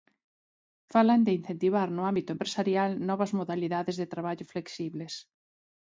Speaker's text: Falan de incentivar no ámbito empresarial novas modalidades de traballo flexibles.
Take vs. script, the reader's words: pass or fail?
pass